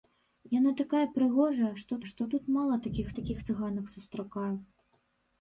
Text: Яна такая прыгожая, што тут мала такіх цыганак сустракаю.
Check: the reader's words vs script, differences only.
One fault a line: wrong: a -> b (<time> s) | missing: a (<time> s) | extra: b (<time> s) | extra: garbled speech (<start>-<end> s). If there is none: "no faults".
extra: што (2.1 s)
extra: такіх (3.2 s)